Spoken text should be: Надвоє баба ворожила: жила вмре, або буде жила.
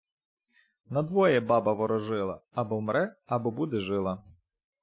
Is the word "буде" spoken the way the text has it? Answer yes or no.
yes